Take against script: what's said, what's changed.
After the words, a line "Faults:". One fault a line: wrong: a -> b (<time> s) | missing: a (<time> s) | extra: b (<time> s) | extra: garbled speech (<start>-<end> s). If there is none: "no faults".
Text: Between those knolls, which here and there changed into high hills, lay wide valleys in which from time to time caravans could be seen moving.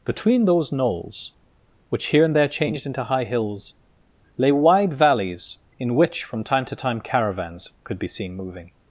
Between those knolls, which here and there changed into high hills, lay wide valleys in which from time to time caravans could be seen moving.
Faults:
no faults